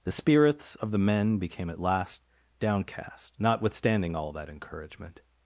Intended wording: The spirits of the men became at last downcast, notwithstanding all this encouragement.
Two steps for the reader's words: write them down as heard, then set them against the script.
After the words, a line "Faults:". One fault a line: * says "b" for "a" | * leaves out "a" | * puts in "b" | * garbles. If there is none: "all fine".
The spirits of the men became at last downcast, notwithstanding all that encouragement.
Faults:
* says "that" for "this"